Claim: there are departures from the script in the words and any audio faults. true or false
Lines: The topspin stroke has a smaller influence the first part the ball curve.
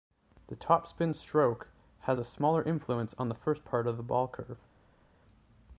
true